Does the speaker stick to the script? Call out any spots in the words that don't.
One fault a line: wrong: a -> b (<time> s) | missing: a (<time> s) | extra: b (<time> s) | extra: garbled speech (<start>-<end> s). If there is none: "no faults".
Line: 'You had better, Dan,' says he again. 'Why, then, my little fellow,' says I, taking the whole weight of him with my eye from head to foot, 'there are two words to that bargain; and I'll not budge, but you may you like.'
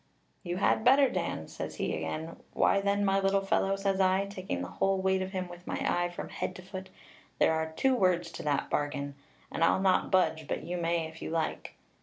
extra: if (11.1 s)